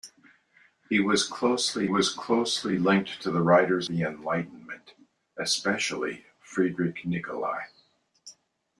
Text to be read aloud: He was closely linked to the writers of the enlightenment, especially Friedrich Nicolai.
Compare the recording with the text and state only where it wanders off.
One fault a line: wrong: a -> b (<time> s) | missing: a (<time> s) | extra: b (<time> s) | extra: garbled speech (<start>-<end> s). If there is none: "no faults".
extra: was closely (1.8 s)
missing: of (3.9 s)